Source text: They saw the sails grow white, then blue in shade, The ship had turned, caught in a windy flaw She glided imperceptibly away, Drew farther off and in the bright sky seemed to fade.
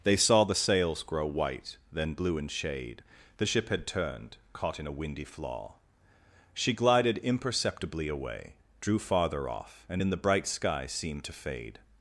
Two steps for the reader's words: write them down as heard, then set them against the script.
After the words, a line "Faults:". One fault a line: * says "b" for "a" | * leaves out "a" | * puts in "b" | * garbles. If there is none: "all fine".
They saw the sails grow white, then blue in shade, The ship had turned, caught in a windy flaw She glided imperceptibly away, Drew farther off and in the bright sky seemed to fade.
Faults:
all fine